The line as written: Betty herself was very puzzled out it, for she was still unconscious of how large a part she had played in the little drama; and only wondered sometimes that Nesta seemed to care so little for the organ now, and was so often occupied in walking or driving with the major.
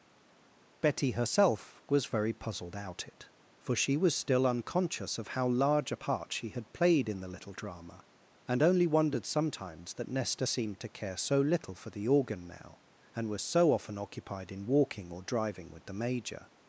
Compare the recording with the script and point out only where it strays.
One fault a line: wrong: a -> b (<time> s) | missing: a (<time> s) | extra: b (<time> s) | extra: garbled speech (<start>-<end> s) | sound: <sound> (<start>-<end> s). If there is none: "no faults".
no faults